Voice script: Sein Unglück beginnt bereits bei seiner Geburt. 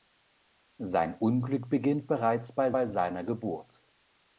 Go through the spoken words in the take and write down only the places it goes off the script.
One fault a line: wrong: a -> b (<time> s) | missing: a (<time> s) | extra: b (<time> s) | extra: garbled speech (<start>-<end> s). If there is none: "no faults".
extra: bei (2.7 s)